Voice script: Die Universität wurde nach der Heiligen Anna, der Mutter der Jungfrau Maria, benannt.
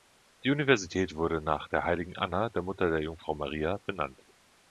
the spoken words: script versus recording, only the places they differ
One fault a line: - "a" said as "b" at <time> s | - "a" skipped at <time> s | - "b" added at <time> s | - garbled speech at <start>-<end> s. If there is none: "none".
none